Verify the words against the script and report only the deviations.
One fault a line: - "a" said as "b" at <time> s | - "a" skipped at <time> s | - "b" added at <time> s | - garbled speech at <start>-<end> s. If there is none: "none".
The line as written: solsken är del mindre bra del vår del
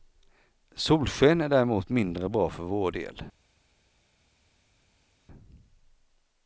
- "del" said as "däremot" at 1.5 s
- "del" said as "för" at 2.5 s